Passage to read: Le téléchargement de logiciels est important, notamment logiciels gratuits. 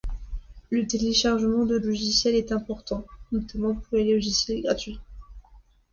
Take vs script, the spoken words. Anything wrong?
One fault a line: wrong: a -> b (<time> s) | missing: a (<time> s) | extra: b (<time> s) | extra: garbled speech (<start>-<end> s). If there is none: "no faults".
extra: pour les (3.7 s)